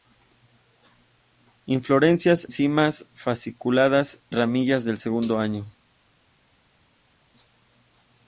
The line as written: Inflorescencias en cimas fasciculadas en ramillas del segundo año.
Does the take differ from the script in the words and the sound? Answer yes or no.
yes